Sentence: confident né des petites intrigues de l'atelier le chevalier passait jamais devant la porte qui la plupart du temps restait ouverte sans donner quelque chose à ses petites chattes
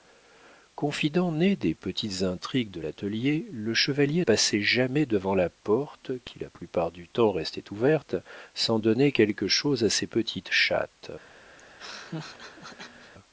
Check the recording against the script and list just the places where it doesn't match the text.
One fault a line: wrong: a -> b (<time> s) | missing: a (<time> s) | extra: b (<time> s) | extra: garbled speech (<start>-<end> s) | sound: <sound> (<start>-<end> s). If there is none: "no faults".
sound: laugh (11.6-13.1 s)